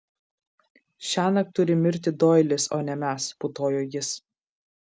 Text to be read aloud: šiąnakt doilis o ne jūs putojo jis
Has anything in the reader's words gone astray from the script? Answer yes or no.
yes